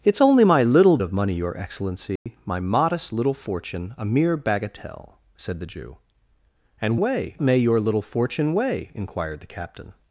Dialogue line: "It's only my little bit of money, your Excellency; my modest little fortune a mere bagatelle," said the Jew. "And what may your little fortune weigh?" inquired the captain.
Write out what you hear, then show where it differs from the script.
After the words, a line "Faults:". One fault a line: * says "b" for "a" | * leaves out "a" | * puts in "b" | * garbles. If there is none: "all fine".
"It's only my little of money, your Excellency; my modest little fortune a mere bagatelle," said the Jew. "And weigh may your little fortune weigh?" inquired the captain.
Faults:
* leaves out "bit"
* says "weigh" for "what"